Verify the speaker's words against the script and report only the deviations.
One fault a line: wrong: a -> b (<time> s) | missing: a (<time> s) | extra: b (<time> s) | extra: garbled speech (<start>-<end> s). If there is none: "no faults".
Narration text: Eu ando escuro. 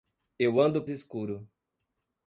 no faults